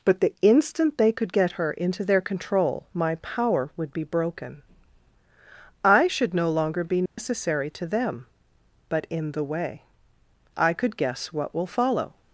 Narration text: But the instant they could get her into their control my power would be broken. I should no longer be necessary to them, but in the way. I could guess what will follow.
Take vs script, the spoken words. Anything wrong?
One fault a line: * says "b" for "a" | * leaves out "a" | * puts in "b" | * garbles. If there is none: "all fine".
all fine